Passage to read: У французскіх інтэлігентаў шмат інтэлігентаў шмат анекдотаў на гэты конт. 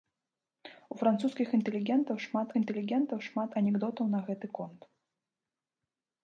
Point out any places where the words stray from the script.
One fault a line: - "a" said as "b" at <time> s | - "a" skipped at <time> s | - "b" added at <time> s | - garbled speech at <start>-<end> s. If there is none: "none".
none